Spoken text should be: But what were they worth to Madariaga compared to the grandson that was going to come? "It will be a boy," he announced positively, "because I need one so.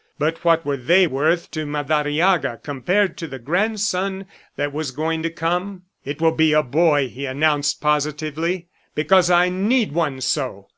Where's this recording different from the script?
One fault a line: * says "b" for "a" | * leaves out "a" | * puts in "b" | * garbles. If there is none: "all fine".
all fine